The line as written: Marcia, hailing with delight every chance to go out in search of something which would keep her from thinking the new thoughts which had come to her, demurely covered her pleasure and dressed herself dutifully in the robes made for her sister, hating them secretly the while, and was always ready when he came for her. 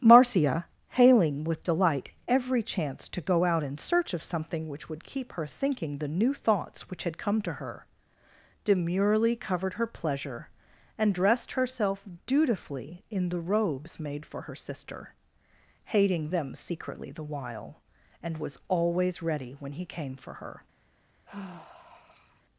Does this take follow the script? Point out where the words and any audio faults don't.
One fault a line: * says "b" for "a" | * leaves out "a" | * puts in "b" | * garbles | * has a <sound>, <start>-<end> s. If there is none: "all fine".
* leaves out "from"
* has a sigh, 21.3-22.4 s